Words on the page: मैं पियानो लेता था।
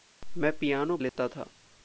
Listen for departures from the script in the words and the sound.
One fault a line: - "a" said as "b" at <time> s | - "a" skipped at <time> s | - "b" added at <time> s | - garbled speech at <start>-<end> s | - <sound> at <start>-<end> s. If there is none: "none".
- dropout at 1.1-1.2 s